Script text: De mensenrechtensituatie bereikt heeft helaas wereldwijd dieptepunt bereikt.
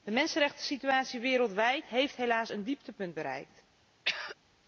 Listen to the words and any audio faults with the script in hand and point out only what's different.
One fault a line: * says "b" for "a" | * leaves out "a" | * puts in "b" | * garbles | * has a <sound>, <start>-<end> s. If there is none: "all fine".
* says "wereldwijd" for "bereikt"
* says "een" for "wereldwijd"
* has a throat clearing, 4.0-4.4 s